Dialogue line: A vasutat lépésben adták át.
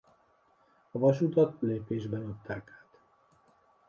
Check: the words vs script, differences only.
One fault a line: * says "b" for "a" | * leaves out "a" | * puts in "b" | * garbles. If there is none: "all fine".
all fine